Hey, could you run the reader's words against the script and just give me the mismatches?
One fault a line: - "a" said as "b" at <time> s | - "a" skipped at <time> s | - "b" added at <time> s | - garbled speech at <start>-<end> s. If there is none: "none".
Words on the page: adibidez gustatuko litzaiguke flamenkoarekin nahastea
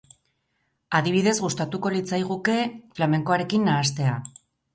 none